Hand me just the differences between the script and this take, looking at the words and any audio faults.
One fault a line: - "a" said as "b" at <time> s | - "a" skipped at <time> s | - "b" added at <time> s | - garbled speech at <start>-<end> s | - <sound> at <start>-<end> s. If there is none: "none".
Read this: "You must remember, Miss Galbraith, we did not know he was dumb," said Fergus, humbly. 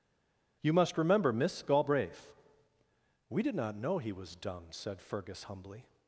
none